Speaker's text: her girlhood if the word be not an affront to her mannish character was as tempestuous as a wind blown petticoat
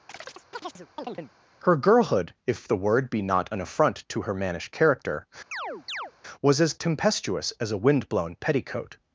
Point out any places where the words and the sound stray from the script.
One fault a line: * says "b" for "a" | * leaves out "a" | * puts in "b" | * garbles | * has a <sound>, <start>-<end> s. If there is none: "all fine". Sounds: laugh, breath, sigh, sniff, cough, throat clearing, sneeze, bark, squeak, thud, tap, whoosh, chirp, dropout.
* has a chirp, 0.1-1.3 s
* has a chirp, 5.5-6.1 s